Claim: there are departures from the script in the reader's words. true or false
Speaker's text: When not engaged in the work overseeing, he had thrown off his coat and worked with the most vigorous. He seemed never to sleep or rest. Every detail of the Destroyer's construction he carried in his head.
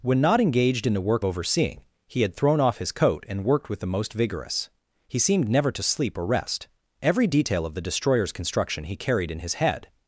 false